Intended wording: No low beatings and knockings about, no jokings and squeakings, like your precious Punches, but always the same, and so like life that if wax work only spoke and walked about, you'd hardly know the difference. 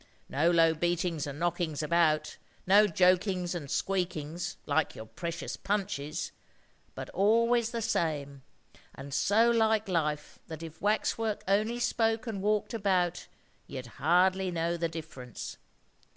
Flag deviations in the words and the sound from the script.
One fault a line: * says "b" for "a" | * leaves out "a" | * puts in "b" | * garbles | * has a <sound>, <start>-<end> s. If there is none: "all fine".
all fine